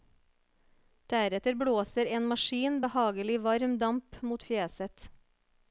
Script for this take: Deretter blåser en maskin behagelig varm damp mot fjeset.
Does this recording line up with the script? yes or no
yes